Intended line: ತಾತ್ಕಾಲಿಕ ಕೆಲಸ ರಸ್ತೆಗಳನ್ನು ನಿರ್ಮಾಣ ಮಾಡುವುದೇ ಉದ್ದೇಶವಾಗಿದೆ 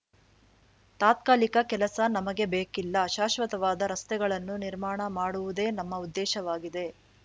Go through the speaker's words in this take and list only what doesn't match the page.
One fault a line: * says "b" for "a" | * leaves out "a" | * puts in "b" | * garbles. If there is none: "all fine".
* puts in "ನಮಗೆ ಬೇಕಿಲ್ಲ ಶಾಶ್ವತವಾದ"
* puts in "ನಮ್ಮ"